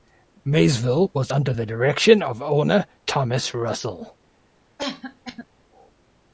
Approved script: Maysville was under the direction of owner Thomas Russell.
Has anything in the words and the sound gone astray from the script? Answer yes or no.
yes